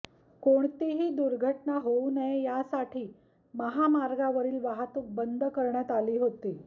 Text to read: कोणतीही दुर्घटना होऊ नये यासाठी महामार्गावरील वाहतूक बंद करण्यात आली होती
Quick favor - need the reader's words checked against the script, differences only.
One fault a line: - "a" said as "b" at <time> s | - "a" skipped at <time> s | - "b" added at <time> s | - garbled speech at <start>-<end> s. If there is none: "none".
none